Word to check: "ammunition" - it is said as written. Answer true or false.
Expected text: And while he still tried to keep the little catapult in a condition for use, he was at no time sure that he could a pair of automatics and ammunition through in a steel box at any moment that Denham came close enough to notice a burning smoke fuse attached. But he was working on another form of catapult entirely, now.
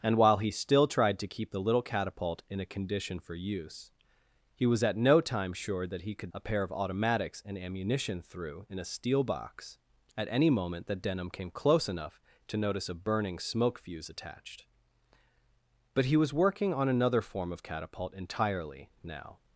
true